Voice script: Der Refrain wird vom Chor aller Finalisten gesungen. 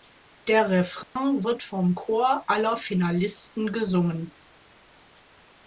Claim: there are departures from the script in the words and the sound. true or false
true